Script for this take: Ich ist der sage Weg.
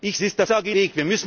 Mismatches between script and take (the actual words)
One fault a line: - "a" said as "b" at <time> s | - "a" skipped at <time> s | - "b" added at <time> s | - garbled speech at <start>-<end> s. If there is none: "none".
none